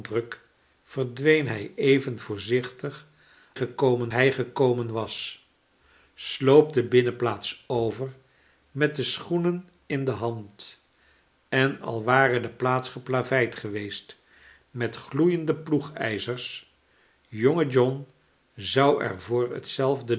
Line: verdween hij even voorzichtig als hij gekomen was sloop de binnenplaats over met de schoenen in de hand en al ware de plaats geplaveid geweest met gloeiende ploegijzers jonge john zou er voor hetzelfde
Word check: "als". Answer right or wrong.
wrong